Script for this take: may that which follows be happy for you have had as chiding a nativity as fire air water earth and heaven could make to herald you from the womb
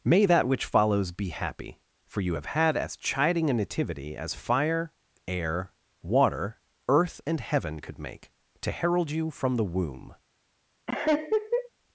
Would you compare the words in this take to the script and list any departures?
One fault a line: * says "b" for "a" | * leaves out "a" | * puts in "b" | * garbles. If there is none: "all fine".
all fine